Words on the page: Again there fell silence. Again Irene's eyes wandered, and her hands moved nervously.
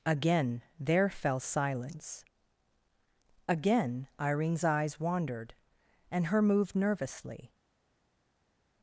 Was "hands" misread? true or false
true